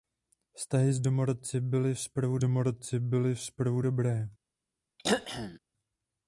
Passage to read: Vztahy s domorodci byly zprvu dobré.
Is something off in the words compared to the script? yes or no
yes